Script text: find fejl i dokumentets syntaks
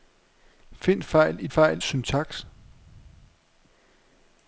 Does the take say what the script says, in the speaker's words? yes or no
no